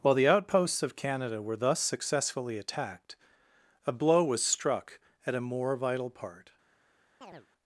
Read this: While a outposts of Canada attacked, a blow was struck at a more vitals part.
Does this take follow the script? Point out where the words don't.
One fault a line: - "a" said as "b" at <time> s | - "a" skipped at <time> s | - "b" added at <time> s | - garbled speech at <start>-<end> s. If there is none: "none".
- "a" said as "the" at 0.1 s
- "were thus successfully" added at 1.4 s
- "vitals" said as "vital" at 5.8 s